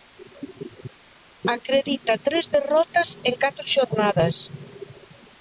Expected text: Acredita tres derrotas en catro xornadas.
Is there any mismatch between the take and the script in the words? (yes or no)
no